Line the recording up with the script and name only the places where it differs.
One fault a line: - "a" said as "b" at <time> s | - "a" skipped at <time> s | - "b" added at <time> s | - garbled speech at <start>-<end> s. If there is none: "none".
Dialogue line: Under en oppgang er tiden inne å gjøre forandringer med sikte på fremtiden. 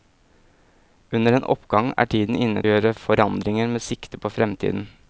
none